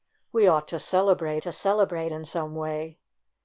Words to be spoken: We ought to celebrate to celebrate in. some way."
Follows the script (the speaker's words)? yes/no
yes